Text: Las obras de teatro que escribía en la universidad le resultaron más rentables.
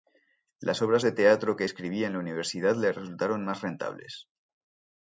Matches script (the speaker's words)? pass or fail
pass